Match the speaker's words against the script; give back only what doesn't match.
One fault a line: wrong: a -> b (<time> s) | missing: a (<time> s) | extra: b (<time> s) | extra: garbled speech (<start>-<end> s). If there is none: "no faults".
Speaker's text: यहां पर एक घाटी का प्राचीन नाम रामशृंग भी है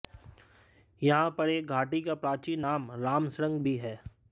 no faults